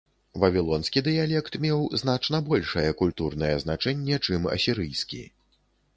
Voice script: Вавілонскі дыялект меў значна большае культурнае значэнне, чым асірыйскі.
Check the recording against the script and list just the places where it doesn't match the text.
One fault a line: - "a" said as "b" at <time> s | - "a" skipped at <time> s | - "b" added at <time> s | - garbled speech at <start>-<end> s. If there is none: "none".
none